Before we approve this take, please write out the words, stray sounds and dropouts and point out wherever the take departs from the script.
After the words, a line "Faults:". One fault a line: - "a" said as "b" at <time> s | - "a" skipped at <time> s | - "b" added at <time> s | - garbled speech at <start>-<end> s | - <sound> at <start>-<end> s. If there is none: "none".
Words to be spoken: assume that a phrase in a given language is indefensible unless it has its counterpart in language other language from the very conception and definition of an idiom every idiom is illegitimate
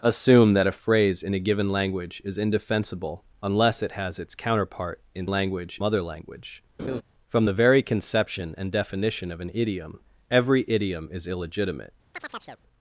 assume that a phrase in a given language is indefensible unless it has its counterpart in language other language from the very conception and definition of an idiom every idiom is illegitimate
Faults:
- laugh at 6.8-7.0 s
- chirp at 12.1-12.6 s